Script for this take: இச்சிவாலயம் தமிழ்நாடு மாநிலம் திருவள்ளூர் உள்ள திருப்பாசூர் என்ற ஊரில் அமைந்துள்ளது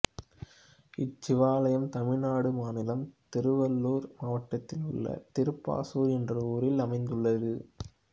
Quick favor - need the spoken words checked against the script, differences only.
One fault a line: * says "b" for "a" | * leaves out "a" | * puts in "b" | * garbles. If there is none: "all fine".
* puts in "மாவட்டத்தில்"